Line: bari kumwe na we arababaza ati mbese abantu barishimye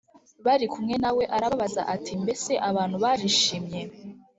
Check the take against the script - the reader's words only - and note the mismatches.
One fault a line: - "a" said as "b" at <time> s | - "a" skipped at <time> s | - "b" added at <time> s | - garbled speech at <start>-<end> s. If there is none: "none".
none